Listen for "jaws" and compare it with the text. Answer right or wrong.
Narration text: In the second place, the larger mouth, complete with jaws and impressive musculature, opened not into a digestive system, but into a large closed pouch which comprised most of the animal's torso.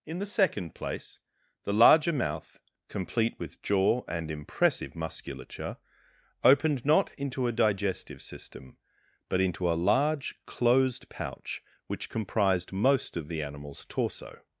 wrong